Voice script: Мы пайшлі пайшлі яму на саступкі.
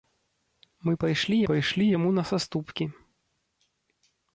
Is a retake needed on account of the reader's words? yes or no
no